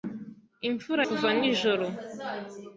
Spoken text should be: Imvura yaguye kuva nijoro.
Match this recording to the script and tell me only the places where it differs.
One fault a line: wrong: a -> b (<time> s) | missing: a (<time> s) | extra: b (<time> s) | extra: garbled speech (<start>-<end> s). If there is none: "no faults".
missing: yaguye (1.0 s)